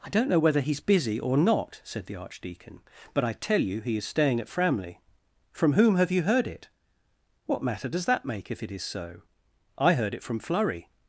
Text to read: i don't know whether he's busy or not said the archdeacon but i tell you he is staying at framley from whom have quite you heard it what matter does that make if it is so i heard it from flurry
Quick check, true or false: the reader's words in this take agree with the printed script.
false